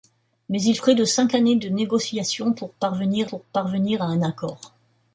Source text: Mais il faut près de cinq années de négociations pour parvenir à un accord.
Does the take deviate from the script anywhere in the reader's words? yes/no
yes